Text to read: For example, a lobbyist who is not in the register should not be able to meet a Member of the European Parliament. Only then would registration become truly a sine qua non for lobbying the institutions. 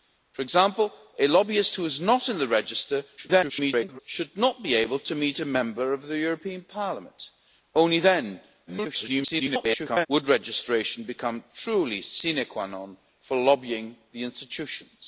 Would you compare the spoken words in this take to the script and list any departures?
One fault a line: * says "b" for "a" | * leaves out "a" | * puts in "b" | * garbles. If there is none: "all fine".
* garbles
* garbles